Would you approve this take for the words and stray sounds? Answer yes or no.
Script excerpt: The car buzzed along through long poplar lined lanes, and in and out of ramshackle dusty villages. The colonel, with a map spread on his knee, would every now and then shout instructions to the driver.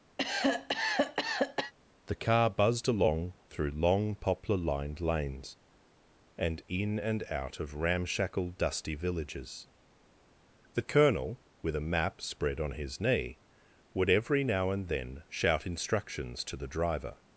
no